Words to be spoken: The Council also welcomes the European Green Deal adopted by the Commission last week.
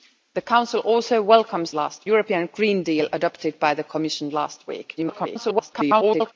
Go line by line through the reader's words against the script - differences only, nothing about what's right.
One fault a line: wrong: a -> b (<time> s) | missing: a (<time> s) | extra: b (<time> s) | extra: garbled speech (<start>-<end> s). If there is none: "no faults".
wrong: the -> last (1.7 s)
extra: garbled speech (5.0-6.3 s)